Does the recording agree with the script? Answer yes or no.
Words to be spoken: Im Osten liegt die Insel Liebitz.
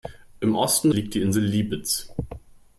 yes